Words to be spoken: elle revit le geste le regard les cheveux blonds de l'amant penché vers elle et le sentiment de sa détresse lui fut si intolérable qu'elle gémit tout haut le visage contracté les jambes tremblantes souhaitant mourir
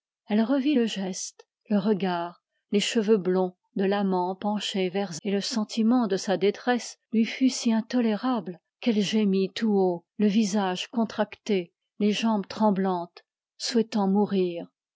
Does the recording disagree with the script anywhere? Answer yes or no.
yes